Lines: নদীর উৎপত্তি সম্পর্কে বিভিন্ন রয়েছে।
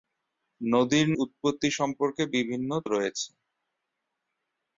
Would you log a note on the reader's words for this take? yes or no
no